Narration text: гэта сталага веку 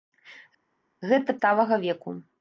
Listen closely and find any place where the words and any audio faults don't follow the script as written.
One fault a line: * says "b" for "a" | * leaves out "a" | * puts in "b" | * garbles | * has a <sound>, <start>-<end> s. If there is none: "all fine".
all fine